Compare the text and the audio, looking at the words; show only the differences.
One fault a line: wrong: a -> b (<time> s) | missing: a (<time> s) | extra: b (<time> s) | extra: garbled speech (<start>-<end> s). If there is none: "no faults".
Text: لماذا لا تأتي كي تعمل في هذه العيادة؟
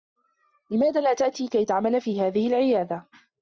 no faults